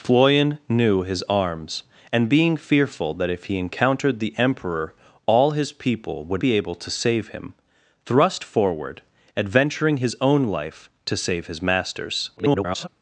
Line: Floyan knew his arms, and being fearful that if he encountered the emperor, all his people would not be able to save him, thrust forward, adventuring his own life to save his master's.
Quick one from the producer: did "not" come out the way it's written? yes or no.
no